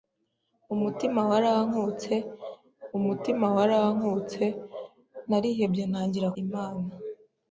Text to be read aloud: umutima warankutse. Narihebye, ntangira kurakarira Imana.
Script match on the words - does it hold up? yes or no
no